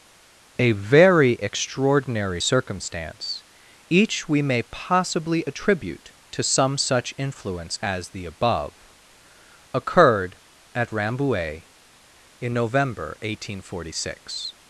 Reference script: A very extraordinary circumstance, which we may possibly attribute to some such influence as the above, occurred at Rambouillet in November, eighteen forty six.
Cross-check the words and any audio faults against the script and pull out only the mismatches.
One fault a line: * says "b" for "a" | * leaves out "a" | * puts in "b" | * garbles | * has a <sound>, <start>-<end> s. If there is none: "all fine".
* says "each" for "which"